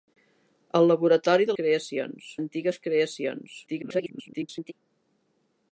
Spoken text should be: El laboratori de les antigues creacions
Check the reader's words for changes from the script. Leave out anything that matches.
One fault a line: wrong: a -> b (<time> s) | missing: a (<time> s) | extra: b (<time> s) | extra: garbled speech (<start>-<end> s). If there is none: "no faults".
wrong: les -> creacions (1.6 s)
extra: garbled speech (3.7-4.7 s)